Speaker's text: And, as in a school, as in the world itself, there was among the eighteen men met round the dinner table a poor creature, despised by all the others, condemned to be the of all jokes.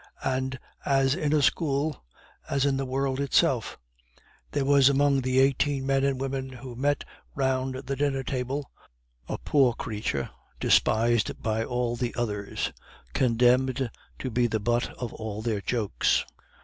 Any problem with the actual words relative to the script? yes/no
yes